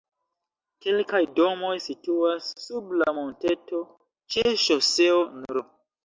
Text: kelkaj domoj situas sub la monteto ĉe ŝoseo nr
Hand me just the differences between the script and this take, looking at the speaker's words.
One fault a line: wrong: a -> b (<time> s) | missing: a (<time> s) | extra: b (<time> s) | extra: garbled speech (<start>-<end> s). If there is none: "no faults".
no faults